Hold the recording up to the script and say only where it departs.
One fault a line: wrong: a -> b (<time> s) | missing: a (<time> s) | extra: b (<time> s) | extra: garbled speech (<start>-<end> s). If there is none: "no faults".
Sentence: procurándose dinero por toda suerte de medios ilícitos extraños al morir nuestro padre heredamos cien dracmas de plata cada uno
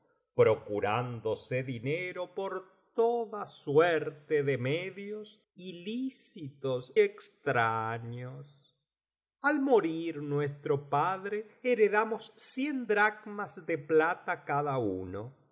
no faults